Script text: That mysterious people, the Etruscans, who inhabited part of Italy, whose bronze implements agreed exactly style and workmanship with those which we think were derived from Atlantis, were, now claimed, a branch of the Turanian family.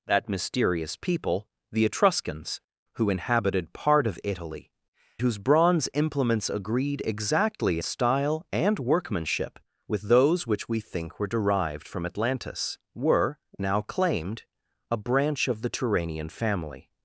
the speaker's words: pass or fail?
pass